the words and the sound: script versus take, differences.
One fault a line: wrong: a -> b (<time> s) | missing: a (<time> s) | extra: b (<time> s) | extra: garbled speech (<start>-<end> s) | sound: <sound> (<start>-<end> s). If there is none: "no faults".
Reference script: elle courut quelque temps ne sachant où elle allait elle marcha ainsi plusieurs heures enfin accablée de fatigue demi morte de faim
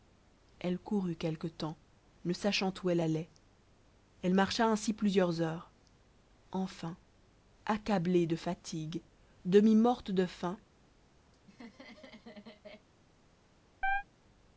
sound: laugh (11.3-12.9 s)
sound: chirp (13.8-14.0 s)